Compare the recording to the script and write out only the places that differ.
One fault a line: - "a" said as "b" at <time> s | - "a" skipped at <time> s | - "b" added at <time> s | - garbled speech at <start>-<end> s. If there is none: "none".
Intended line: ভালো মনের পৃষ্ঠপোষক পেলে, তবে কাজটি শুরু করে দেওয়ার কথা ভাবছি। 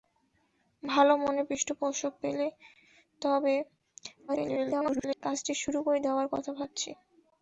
- garbled speech at 4.3-5.2 s